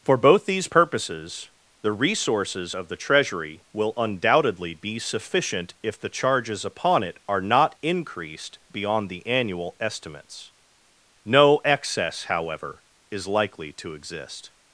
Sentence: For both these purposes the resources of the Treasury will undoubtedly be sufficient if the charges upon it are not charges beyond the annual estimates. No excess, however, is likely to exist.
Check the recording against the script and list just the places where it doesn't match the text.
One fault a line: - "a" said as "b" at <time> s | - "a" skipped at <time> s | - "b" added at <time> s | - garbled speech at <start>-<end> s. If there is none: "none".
- "charges" said as "increased" at 7.8 s